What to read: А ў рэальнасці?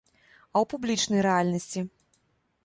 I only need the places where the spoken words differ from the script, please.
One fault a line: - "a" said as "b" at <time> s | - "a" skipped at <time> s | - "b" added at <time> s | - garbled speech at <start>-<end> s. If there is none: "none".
- "публічнай" added at 0.7 s